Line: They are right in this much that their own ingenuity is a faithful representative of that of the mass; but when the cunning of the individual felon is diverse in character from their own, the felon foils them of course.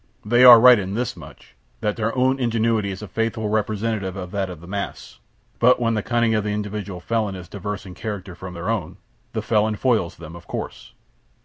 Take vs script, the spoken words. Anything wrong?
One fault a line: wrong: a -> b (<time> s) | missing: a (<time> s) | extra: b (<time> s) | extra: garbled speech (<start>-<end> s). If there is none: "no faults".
no faults